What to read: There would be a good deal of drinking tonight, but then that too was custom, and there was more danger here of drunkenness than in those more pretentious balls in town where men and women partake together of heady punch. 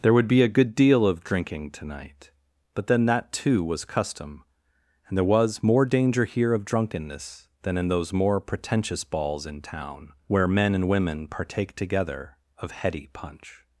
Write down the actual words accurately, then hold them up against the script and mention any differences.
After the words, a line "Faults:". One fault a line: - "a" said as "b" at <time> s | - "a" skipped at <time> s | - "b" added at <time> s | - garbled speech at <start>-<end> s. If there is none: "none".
There would be a good deal of drinking tonight, but then that too was custom, and there was more danger here of drunkenness than in those more pretentious balls in town where men and women partake together of heady punch.
Faults:
none